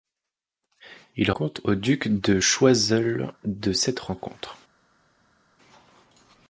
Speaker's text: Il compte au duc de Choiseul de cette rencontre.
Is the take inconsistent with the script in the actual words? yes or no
no